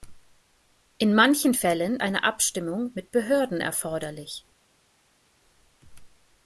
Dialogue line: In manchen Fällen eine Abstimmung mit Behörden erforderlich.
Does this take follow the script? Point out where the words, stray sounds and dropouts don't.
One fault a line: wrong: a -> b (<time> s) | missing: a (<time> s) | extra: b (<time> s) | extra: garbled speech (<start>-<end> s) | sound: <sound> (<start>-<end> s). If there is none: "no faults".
no faults